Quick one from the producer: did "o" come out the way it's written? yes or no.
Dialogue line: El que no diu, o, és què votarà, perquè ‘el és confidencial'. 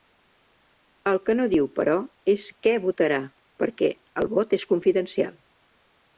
no